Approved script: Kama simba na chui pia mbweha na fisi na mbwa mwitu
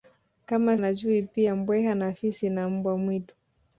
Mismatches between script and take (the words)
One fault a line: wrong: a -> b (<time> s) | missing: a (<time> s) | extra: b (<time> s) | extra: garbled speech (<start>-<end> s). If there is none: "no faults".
missing: simba (0.8 s)